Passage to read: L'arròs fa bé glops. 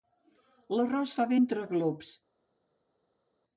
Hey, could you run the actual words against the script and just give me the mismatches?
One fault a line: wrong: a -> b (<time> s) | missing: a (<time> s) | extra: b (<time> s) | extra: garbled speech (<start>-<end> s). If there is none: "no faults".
extra: entre (1.4 s)